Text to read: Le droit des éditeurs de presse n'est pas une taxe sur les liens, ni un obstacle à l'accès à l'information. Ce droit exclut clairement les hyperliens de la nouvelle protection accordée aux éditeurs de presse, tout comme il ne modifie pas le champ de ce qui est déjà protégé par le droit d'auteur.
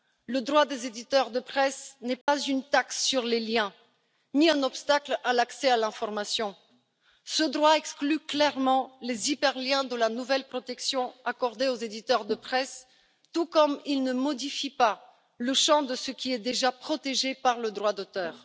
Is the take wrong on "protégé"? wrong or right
right